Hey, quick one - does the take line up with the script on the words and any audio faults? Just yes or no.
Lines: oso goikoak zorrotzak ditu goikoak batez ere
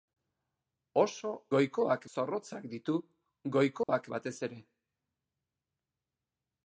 no